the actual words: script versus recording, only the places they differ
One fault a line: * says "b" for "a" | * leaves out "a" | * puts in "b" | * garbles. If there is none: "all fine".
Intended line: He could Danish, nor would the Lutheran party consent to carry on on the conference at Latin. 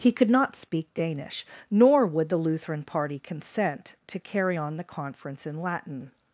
* puts in "not speak"
* leaves out "on"
* says "in" for "at"